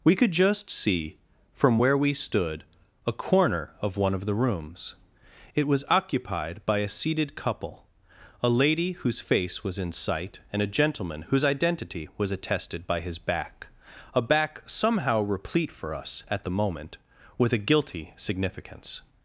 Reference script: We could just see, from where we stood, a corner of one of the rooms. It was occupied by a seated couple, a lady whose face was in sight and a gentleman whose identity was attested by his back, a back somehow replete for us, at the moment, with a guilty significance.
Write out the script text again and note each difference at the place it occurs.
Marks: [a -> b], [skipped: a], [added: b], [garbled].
We could just see, from where we stood, a corner of one of the rooms. It was occupied by a seated couple, a lady whose face was in sight and a gentleman whose identity was attested by his back, a back somehow replete for us, at the moment, with a guilty significance.